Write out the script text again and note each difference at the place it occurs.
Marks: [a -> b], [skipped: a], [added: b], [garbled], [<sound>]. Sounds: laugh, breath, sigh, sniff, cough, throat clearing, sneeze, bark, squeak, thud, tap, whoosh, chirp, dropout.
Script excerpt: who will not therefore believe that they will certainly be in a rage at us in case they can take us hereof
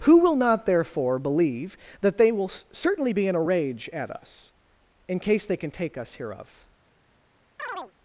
who will not therefore believe that they will certainly be in a rage at us in case they can take us hereof [chirp]